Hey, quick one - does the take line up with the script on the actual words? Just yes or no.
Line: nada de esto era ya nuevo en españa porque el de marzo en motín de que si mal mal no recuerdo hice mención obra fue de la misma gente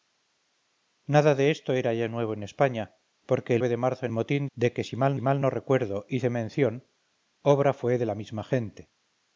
yes